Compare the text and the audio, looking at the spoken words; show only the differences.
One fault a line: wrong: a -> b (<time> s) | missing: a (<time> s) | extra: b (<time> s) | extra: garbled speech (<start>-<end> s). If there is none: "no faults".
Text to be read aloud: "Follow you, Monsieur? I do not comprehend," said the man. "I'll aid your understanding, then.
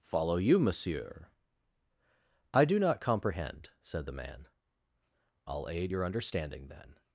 no faults